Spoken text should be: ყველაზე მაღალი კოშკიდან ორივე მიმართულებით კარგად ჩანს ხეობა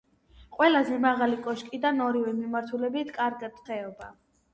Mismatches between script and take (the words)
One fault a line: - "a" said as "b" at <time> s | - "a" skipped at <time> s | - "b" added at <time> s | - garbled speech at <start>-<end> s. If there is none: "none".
- "ჩანს" skipped at 3.6 s